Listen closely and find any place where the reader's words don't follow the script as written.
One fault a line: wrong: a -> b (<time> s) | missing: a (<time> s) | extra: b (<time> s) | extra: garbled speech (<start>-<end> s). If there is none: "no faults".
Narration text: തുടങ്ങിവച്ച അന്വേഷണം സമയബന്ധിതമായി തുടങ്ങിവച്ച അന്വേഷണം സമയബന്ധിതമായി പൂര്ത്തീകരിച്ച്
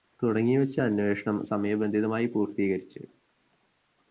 missing: തുടങ്ങിവച്ച അന്വേഷണം സമയബന്ധിതമായി (2.3 s)